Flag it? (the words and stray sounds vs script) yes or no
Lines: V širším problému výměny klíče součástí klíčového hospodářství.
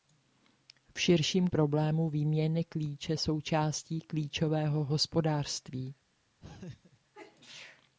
yes